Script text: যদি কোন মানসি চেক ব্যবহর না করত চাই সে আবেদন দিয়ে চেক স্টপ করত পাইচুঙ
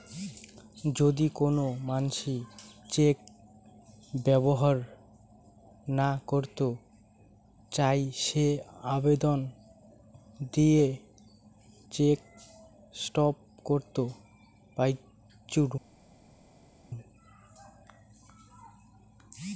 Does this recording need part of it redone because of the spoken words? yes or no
no